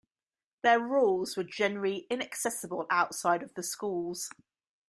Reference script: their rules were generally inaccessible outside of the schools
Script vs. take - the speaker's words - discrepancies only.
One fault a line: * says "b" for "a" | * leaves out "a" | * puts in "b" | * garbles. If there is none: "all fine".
all fine